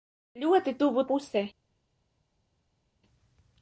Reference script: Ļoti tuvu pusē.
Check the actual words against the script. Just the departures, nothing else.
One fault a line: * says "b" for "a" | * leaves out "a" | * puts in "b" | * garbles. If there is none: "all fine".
all fine